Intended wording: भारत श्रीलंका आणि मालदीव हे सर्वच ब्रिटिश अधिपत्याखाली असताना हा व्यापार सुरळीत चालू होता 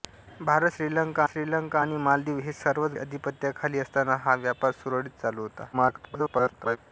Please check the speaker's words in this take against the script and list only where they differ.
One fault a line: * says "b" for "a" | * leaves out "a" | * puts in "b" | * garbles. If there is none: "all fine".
* puts in "श्रीलंका"
* leaves out "ब्रिटिश"
* garbles